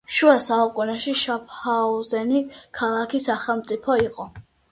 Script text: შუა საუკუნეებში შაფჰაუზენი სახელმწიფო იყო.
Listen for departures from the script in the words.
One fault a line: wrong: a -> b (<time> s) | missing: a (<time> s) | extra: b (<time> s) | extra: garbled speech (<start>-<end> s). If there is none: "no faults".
extra: ქალაქი (2.8 s)